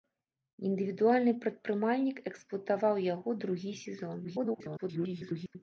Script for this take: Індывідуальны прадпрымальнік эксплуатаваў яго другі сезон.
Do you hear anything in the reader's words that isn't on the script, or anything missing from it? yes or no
yes